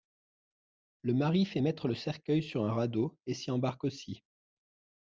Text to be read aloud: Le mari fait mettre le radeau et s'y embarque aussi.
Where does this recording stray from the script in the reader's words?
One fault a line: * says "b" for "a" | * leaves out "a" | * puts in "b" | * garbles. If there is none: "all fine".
* puts in "cercueil sur un"